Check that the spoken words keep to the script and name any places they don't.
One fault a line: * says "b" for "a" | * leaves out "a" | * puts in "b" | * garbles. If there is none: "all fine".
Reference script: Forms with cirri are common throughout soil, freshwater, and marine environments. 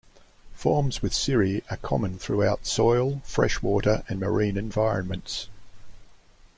all fine